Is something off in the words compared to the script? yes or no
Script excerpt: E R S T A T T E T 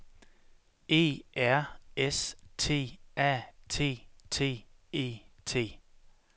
no